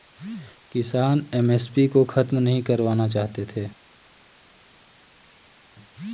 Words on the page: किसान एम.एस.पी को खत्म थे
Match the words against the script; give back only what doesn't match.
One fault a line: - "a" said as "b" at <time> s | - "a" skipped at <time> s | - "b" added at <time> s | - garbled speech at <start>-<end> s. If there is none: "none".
- "नहीं करवाना चाहते" added at 2.4 s